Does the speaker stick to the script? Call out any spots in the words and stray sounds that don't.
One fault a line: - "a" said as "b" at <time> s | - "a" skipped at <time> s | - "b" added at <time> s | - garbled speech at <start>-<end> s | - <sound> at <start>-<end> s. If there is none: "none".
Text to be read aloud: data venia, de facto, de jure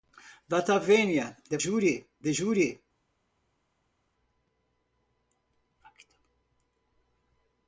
- "facto" said as "jure" at 1.6 s